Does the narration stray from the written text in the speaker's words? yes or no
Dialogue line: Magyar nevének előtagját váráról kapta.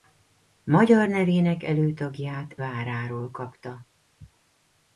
no